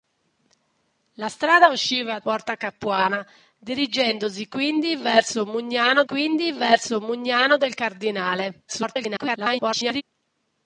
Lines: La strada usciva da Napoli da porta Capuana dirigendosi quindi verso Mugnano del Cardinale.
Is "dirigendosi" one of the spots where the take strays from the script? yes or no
yes